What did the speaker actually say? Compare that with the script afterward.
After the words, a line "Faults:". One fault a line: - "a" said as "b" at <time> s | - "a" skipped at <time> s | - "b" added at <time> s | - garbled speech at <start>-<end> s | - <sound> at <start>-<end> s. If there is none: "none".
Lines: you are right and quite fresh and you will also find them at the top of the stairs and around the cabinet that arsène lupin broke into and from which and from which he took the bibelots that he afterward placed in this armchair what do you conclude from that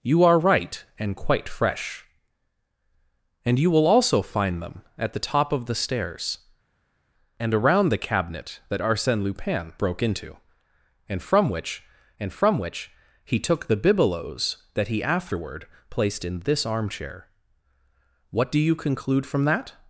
you are right and quite fresh and you will also find them at the top of the stairs and around the cabinet that arsène lupin broke into and from which and from which he took the bibelots that he afterward placed in this armchair what do you conclude from that
Faults:
none